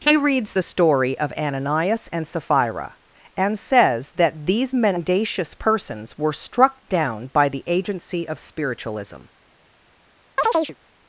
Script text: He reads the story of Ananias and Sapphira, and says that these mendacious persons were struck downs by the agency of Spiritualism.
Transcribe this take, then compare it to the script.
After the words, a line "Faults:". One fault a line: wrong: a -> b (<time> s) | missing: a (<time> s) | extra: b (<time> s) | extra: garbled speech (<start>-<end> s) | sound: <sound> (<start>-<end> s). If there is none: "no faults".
He reads the story of Ananias and Sapphira, and says that these mendacious persons were struck down by the agency of Spiritualism.
Faults:
wrong: downs -> down (6.9 s)
sound: chirp (10.4-10.8 s)